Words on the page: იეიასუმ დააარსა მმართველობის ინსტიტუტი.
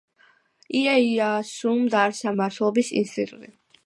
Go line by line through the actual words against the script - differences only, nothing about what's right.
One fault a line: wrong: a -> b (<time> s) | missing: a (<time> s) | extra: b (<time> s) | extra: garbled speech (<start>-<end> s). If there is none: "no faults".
no faults